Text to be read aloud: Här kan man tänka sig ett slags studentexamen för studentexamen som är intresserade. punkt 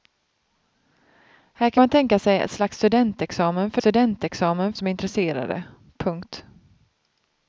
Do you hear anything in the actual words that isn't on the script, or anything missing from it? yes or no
no